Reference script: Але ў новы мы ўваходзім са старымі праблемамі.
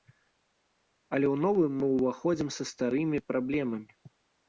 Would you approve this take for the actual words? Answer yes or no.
yes